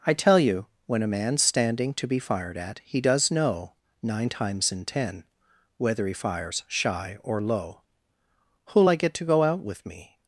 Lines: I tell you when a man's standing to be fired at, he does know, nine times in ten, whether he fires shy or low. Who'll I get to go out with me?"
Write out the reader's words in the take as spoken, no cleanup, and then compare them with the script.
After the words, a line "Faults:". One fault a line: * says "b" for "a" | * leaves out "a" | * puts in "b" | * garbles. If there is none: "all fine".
I tell you when a man's standing to be fired at, he does know, nine times in ten, whether he fires shy or low. Who'll I get to go out with me?"
Faults:
all fine